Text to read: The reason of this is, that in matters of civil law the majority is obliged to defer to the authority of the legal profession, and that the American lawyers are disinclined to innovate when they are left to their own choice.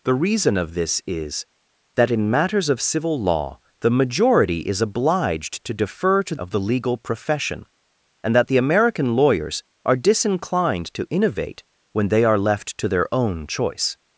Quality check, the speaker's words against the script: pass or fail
fail